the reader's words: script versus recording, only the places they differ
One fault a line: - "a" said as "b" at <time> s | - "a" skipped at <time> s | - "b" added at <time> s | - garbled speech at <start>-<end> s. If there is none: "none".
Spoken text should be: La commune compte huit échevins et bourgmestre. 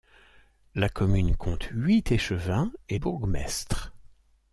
none